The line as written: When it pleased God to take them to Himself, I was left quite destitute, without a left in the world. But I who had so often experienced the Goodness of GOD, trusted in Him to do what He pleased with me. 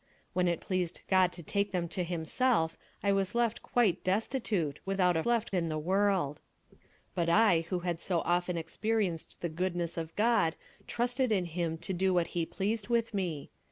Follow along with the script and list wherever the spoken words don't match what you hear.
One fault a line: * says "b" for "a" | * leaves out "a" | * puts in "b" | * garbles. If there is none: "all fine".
all fine